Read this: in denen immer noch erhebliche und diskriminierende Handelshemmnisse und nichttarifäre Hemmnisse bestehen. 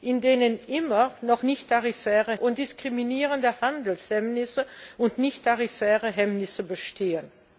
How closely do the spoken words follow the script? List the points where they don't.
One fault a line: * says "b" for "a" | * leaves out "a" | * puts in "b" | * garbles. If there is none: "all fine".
* says "nichttarifäre" for "erhebliche"